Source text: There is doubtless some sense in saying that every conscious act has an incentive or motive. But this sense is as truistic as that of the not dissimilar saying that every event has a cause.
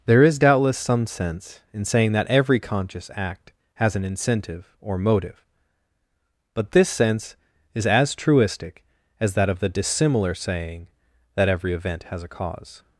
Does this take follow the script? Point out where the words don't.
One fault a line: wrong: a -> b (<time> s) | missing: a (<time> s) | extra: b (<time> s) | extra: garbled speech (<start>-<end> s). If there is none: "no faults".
missing: not (9.7 s)